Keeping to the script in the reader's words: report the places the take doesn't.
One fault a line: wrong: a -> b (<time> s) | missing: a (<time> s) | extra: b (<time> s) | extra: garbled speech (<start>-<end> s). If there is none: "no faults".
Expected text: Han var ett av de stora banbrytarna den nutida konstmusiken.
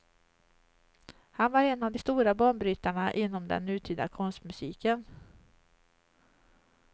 wrong: ett -> en (1.6 s)
extra: inom (3.1 s)